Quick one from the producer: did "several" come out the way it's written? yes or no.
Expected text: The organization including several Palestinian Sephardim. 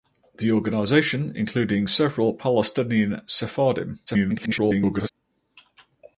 yes